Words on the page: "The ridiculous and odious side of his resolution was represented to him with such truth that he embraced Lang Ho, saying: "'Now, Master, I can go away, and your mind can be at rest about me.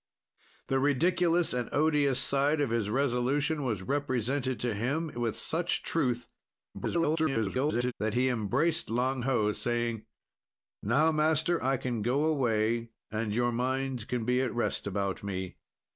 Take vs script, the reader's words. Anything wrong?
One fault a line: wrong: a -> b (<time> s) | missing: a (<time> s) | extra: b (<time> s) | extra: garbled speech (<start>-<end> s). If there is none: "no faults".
extra: garbled speech (6.7-7.9 s)